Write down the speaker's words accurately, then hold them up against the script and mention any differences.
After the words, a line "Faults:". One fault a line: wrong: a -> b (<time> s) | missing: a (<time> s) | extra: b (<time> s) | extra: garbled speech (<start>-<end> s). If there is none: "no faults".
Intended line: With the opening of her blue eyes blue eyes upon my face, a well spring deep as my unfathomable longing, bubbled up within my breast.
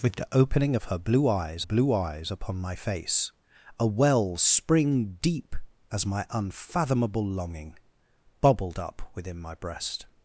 With the opening of her blue eyes blue eyes upon my face, a well spring deep as my unfathomable longing, bubbled up within my breast.
Faults:
no faults